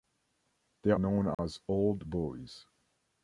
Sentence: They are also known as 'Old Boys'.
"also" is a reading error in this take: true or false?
true